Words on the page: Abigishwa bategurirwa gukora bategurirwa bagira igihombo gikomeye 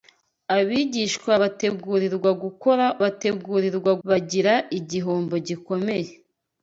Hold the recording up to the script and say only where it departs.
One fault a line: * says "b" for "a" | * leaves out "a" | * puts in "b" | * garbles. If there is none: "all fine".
all fine